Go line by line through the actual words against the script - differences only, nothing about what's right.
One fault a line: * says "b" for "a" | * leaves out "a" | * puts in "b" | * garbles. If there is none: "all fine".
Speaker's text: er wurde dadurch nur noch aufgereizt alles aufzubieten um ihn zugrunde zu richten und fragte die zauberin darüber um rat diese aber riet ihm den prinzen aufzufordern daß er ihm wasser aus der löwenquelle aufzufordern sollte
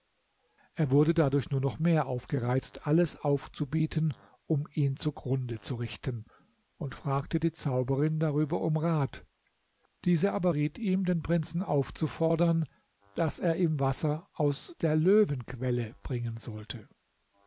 * puts in "mehr"
* says "bringen" for "aufzufordern"